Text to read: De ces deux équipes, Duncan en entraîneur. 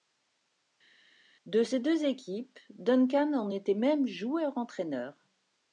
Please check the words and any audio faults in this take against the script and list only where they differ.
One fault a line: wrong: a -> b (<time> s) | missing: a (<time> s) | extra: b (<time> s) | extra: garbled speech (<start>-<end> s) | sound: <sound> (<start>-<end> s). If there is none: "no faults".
extra: était même joueur (3.5 s)